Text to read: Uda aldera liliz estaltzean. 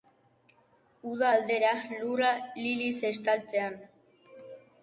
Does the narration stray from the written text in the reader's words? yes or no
yes